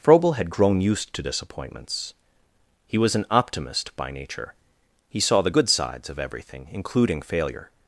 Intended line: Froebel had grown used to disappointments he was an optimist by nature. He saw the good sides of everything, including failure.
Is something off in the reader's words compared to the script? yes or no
no